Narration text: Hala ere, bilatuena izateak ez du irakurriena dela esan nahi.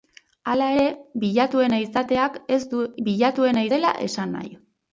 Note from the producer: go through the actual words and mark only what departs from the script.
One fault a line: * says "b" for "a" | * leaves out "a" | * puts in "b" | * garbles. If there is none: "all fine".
* says "bilatuena" for "irakurriena"